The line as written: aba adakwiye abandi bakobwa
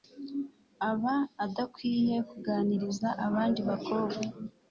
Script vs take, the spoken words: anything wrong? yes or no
yes